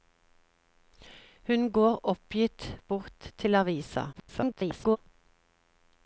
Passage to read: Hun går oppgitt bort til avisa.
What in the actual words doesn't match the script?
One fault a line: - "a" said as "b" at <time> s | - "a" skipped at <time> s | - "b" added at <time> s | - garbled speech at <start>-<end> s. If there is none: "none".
- garbled speech at 4.1-5.0 s